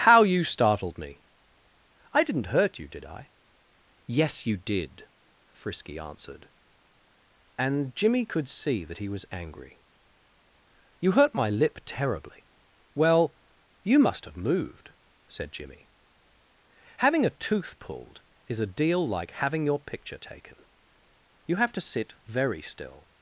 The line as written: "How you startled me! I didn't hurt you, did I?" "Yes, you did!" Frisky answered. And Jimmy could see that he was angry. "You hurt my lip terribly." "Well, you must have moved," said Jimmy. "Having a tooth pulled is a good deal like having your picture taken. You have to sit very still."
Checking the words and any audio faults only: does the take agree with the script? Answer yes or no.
no